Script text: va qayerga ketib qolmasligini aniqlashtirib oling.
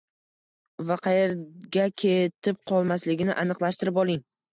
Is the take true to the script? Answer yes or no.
yes